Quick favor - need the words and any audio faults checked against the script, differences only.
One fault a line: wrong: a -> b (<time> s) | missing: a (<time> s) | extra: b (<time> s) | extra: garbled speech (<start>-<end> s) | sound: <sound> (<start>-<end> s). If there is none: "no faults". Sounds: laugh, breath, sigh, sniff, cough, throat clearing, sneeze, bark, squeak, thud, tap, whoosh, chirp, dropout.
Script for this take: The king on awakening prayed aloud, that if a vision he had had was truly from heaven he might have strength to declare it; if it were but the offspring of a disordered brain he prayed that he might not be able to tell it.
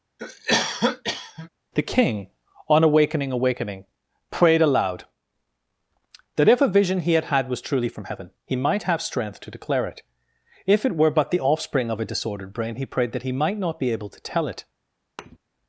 sound: cough (0.2-1.5 s)
extra: awakening (3.3 s)
sound: thud (15.2-15.4 s)